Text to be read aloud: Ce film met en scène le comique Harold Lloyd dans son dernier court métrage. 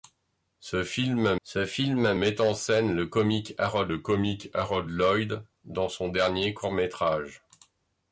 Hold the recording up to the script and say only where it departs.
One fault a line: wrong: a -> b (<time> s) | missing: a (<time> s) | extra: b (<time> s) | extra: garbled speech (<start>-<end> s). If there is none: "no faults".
extra: ce film (1.4 s)
extra: le comique Harold (3.9 s)